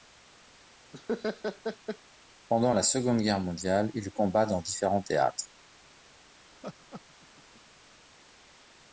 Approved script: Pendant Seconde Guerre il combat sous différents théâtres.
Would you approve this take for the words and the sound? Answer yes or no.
no